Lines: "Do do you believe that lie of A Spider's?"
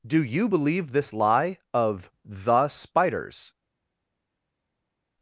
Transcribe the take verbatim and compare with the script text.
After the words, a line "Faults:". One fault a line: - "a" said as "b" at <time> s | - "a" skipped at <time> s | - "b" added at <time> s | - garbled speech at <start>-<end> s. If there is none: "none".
"Do you believe this lie of The Spider's?"
Faults:
- "do" skipped at 0.2 s
- "that" said as "this" at 0.9 s
- "A" said as "The" at 2.2 s